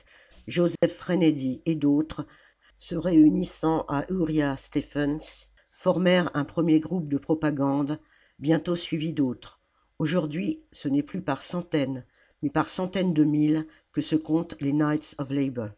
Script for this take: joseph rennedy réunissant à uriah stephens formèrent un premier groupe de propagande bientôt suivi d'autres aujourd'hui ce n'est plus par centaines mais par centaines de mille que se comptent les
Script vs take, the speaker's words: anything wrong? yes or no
yes